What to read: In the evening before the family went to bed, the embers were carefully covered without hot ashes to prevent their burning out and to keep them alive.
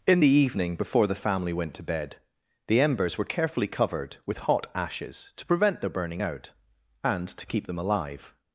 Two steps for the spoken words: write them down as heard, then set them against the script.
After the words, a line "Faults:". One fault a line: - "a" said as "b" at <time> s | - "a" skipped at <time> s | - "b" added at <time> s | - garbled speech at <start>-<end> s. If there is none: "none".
In the evening before the family went to bed, the embers were carefully covered with hot ashes to prevent their burning out and to keep them alive.
Faults:
- "without" said as "with" at 4.2 s